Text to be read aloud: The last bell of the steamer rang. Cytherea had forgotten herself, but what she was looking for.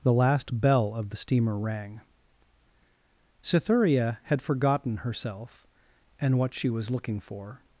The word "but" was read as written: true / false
false